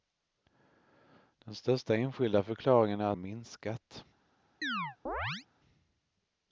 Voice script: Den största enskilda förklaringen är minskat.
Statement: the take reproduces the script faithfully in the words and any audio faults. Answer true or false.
false